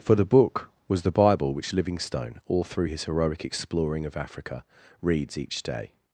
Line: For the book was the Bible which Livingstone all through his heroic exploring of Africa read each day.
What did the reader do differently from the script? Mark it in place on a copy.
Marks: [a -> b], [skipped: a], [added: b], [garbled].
For the book was the Bible which Livingstone all through his heroic exploring of Africa [read -> reads] each day.